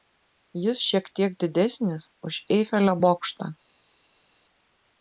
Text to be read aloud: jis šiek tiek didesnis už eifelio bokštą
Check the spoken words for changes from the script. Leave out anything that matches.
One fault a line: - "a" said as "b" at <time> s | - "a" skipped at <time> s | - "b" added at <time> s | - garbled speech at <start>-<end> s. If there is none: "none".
none